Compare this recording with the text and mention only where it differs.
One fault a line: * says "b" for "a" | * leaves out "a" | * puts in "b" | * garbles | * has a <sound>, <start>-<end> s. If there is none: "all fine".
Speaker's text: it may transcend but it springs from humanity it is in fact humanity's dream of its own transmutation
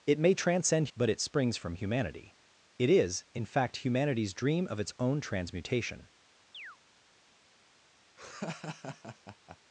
* has a chirp, 6.5-6.8 s
* has a laugh, 8.2-9.6 s